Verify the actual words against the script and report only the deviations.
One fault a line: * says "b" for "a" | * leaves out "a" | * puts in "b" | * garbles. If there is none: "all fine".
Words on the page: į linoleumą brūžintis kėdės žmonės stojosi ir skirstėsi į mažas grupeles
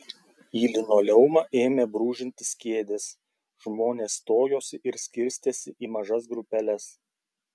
* puts in "ėmė"